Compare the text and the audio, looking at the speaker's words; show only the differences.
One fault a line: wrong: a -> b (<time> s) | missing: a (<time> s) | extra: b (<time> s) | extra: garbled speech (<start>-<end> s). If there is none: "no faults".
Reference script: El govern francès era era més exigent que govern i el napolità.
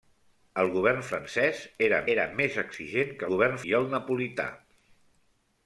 no faults